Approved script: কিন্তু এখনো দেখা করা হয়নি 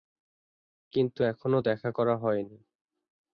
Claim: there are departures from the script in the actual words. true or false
false